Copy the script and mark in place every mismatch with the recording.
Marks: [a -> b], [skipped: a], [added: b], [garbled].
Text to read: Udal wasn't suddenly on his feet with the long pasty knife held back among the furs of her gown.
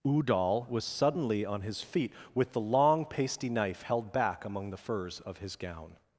Udal [wasn't -> was] suddenly on his feet with the long pasty knife held back among the furs of [her -> his] gown.